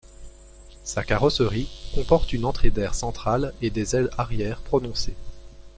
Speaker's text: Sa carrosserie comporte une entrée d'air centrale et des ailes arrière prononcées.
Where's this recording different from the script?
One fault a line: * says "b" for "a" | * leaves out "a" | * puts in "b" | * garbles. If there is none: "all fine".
all fine